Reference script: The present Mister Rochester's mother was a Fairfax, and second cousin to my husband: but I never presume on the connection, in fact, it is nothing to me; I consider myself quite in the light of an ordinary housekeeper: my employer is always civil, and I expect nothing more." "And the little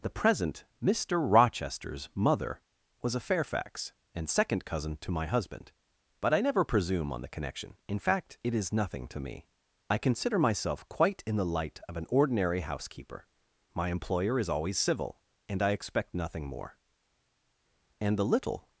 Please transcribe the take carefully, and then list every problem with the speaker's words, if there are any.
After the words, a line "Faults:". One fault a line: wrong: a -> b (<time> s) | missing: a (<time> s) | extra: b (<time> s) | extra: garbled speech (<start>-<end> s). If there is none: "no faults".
The present Mister Rochester's mother was a Fairfax, and second cousin to my husband: but I never presume on the connection, in fact, it is nothing to me; I consider myself quite in the light of an ordinary housekeeper: my employer is always civil, and I expect nothing more." "And the little
Faults:
no faults